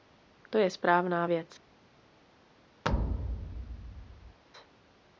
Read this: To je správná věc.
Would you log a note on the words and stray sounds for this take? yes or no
yes